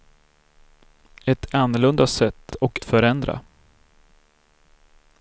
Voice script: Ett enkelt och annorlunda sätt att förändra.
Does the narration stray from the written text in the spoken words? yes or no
yes